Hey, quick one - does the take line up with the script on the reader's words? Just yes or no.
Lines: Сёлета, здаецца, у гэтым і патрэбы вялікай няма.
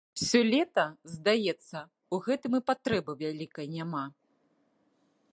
yes